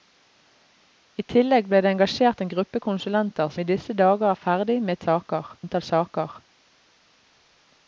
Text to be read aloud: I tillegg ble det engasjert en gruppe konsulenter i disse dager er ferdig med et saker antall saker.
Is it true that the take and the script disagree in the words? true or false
false